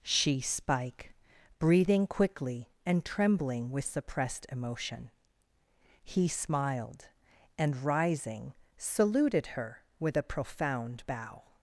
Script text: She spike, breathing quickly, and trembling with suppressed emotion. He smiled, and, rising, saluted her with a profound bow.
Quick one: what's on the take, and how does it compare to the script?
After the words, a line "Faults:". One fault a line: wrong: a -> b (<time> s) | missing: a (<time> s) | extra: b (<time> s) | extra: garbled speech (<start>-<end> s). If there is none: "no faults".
She spike, breathing quickly, and trembling with suppressed emotion. He smiled, and, rising, saluted her with a profound bow.
Faults:
no faults